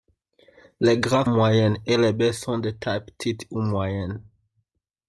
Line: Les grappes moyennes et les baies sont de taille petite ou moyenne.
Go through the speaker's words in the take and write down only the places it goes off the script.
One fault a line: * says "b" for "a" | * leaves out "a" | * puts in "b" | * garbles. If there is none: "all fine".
all fine